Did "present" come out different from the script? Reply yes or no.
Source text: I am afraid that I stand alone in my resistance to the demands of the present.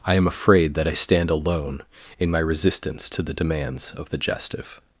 yes